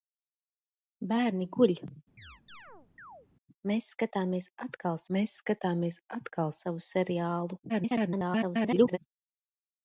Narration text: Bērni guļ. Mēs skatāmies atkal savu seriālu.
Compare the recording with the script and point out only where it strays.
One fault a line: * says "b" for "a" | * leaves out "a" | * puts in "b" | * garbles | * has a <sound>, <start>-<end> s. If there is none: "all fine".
* has a chirp, 2.2-3.3 s
* puts in "mēs skatāmies atkal"
* garbles